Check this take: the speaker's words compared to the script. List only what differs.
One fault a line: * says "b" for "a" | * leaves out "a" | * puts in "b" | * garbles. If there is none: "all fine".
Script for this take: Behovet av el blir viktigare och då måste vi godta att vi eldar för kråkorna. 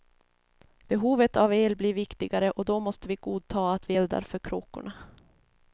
all fine